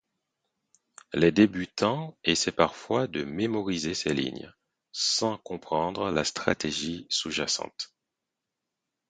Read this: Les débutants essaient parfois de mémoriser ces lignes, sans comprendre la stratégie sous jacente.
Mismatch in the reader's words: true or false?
false